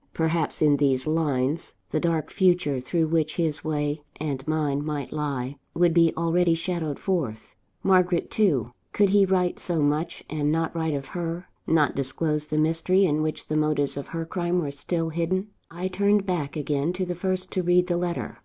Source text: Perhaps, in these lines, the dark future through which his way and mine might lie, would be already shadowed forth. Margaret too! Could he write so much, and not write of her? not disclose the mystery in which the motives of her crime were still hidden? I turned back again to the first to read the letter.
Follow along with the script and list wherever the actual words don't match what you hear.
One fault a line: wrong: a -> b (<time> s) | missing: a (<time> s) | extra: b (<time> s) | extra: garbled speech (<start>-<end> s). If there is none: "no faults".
no faults